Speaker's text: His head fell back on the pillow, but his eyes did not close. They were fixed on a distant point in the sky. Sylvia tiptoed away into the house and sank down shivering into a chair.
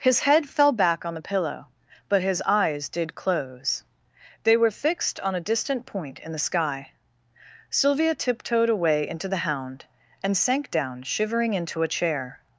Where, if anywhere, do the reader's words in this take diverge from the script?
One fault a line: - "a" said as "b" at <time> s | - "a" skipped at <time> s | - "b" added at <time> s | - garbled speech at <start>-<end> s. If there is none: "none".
- "not" skipped at 3.1 s
- "house" said as "hound" at 9.4 s